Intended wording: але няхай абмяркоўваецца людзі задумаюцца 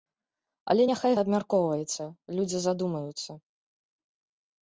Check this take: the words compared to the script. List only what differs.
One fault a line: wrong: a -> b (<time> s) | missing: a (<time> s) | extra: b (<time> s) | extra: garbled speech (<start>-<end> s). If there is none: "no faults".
no faults